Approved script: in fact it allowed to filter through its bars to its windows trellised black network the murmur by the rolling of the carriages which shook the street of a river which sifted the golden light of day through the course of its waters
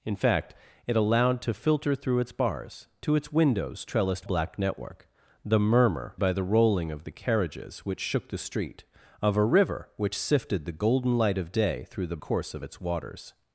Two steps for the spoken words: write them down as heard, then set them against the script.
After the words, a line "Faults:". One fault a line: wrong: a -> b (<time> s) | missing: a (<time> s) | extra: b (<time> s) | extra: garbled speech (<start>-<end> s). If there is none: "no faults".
in fact it allowed to filter through its bars to its windows trellised black network the murmur by the rolling of the carriages which shook the street of a river which sifted the golden light of day through the course of its waters
Faults:
no faults